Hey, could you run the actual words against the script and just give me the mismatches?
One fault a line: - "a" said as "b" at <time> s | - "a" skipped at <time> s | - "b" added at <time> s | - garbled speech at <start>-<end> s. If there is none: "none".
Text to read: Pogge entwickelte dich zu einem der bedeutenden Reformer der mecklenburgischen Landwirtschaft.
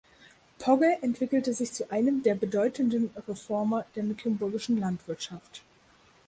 - "dich" said as "sich" at 1.5 s